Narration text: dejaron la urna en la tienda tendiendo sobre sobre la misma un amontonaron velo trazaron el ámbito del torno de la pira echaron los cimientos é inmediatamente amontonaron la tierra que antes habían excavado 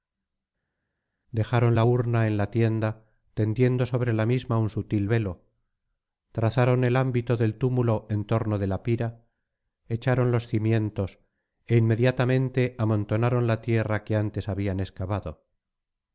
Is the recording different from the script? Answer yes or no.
yes